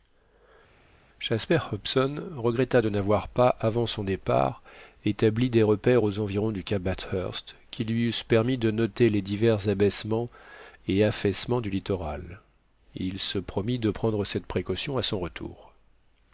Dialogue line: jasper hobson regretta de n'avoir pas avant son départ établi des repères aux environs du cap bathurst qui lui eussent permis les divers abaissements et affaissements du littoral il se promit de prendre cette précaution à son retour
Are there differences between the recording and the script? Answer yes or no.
yes